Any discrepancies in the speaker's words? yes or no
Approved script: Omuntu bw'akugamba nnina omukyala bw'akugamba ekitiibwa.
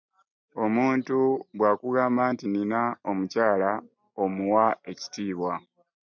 yes